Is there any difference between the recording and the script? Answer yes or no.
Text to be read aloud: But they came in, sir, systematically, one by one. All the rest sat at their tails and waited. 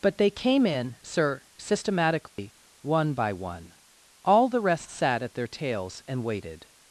no